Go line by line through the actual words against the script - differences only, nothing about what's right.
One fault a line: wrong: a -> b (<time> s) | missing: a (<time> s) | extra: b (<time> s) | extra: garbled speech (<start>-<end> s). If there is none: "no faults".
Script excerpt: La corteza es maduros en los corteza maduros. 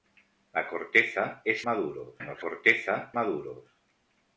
no faults